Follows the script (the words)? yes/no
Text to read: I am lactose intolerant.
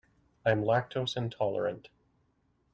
yes